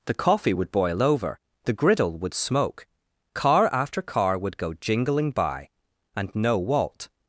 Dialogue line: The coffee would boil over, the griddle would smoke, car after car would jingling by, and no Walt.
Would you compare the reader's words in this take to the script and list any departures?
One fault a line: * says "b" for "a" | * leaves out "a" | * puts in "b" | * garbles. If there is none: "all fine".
* puts in "go"